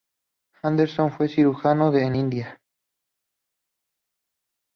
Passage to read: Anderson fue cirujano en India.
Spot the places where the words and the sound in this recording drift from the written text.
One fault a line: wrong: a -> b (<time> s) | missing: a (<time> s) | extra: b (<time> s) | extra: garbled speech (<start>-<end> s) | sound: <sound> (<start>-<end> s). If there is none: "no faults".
no faults